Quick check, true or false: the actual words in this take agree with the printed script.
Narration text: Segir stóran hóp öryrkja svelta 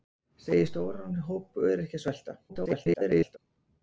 false